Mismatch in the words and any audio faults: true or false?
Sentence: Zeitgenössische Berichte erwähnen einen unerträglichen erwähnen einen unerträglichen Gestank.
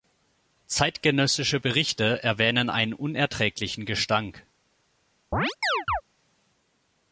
true